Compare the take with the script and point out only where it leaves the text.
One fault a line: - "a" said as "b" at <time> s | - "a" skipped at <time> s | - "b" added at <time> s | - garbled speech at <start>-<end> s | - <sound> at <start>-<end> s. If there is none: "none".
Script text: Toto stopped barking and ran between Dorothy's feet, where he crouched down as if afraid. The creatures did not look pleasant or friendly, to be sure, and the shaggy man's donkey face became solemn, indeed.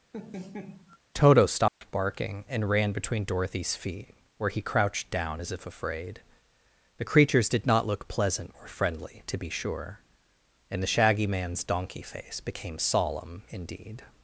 - laugh at 0.1-1.0 s
- dropout at 1.7-1.8 s